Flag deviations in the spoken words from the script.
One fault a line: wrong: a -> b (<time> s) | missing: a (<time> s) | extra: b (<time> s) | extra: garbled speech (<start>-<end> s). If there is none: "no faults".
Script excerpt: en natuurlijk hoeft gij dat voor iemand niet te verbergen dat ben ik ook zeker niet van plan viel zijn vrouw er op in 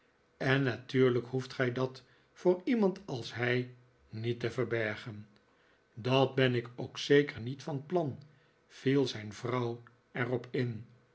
extra: als hij (3.0 s)